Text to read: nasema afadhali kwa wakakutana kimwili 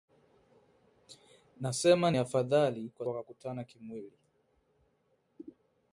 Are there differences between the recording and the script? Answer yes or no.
no